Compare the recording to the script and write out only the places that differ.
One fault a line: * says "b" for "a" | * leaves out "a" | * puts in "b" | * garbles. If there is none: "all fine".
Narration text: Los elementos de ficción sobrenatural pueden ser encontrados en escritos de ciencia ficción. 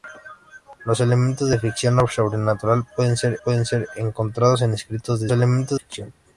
* puts in "pueden ser"
* says "elementos" for "ciencia"